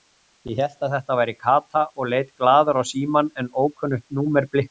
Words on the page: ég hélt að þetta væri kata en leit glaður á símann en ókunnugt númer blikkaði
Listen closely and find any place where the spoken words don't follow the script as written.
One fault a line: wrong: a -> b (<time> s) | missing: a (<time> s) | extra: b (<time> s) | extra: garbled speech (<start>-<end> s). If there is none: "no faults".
wrong: en -> og (2.0 s)